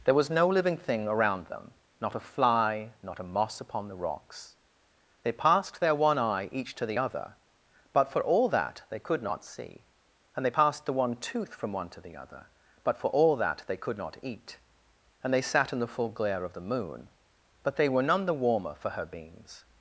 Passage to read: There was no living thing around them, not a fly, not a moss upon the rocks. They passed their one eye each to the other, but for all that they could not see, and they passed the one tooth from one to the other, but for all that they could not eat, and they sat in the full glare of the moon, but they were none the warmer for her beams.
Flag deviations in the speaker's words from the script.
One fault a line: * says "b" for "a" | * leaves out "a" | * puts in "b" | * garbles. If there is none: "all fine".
all fine